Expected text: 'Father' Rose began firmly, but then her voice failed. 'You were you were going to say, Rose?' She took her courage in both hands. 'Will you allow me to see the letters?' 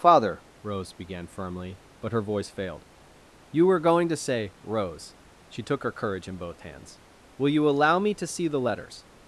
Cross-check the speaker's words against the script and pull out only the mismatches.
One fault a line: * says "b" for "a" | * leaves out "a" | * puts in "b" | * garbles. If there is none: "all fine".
* leaves out "then"
* leaves out "you were"